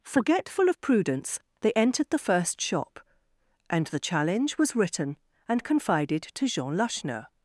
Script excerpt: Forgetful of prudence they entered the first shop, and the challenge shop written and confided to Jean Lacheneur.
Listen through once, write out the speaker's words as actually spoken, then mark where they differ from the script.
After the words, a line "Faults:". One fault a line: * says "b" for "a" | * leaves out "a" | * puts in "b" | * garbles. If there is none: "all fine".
Forgetful of prudence they entered the first shop, and the challenge was written and confided to Jean Lacheneur.
Faults:
* says "was" for "shop"